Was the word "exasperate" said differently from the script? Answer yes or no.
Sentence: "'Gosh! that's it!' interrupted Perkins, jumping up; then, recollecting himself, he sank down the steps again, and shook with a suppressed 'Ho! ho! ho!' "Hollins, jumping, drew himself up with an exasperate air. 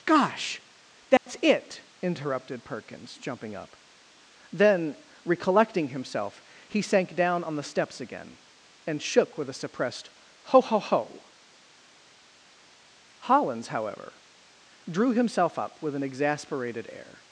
yes